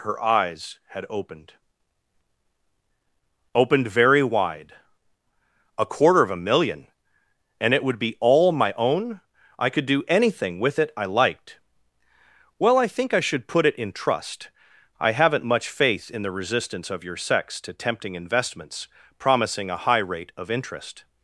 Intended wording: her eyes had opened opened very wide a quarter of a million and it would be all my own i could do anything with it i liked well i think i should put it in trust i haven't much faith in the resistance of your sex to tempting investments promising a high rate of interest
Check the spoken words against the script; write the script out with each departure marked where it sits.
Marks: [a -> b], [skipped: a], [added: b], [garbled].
her eyes had opened opened very wide a quarter of a million and it would be all my own i could do anything with it i liked well i think i should put it in trust i haven't much faith in the resistance of your sex to tempting investments promising a high rate of interest